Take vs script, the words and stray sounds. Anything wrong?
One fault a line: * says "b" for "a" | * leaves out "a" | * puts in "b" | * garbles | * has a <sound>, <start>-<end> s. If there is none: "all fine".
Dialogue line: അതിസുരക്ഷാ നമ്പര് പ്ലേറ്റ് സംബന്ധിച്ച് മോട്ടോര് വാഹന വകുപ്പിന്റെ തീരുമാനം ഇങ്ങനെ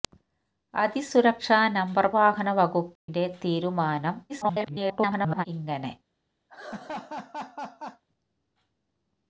* leaves out "പ്ലേറ്റ് സംബന്ധിച്ച് മോട്ടോര്"
* has a dropout, 3.0-3.1 s
* garbles
* has a laugh, 6.5-8.0 s